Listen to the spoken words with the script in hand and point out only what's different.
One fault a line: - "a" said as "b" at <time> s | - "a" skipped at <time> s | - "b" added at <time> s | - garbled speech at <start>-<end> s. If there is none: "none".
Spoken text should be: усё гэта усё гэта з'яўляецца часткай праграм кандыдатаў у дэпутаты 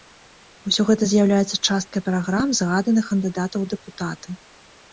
- "усё гэта" skipped at 1.0 s
- "згаданых" added at 2.6 s